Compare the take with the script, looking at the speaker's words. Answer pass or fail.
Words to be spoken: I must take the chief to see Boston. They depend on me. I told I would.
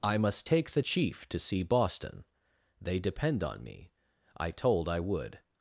pass